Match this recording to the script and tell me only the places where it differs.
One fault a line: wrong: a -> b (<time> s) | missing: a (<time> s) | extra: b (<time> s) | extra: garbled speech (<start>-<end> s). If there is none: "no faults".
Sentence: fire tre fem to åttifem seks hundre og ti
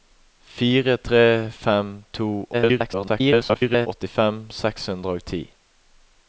extra: garbled speech (2.5-3.9 s)